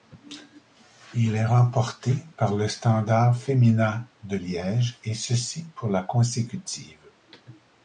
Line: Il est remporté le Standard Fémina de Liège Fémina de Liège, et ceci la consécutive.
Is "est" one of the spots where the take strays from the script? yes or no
no